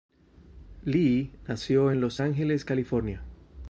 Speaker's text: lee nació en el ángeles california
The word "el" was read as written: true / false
false